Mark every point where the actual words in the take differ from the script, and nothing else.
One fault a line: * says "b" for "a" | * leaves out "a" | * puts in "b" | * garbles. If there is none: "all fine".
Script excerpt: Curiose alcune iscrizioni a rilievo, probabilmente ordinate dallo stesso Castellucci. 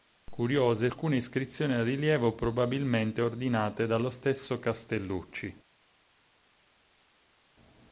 all fine